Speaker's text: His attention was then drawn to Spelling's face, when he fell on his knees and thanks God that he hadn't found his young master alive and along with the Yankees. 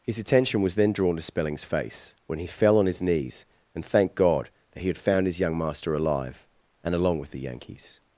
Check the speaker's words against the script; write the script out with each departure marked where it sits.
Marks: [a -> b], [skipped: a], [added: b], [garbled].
His attention was then drawn to Spelling's face, when he fell on his knees and [thanks -> thanked] God that he [hadn't -> had] found his young master alive and along with the Yankees.